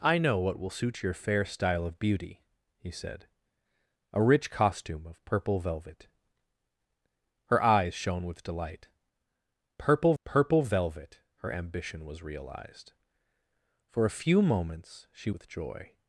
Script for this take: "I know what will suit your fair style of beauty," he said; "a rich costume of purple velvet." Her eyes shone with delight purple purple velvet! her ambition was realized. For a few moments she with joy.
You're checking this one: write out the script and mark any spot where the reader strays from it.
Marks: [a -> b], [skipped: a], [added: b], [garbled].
"I know what will suit your fair style of beauty," he said; "a rich costume of purple velvet." Her eyes shone with delight purple purple velvet! her ambition was realized. For a few moments she with joy.